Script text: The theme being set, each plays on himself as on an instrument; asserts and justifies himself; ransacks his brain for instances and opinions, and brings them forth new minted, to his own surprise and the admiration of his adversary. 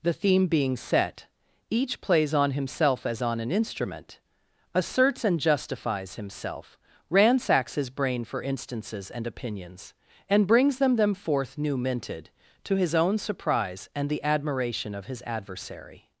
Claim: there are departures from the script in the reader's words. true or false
true